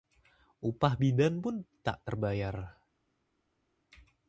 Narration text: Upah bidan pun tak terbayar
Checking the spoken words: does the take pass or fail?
pass